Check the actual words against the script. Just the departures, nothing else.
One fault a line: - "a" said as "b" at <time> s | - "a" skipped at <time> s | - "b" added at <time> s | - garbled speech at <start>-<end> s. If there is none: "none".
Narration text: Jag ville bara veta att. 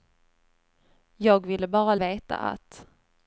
none